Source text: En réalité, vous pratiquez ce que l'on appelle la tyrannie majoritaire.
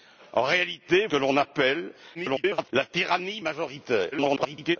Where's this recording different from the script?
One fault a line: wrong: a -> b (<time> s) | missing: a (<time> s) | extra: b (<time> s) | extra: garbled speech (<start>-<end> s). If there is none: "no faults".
missing: vous pratiquez ce (1.1 s)
extra: garbled speech (2.1-2.7 s)
extra: garbled speech (4.1-4.8 s)